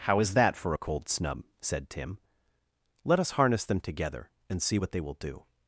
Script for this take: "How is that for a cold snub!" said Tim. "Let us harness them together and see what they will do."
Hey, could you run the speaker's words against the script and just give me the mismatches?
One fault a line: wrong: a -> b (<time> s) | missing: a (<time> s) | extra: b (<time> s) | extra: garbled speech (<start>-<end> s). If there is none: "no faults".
no faults